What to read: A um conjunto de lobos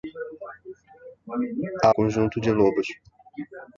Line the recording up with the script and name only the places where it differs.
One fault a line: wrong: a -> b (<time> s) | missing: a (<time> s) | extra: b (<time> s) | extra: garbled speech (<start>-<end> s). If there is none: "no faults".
no faults